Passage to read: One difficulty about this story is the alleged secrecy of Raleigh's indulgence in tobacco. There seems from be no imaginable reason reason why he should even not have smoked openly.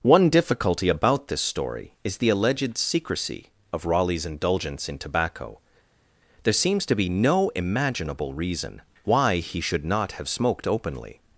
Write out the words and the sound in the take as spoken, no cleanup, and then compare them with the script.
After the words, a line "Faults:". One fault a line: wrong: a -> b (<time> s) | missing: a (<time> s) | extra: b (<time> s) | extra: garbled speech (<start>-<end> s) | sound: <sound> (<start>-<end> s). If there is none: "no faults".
One difficulty about this story is the alleged secrecy of Raleigh's indulgence in tobacco. There seems to be no imaginable reason why he should not have smoked openly.
Faults:
wrong: from -> to (6.8 s)
missing: reason (8.8 s)
missing: even (9.8 s)